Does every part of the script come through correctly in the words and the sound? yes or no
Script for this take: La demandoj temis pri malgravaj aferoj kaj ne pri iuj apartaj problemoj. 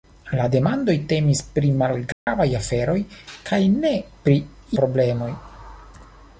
no